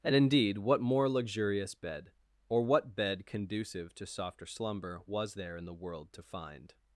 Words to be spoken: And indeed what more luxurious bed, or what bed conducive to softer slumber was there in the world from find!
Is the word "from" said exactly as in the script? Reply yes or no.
no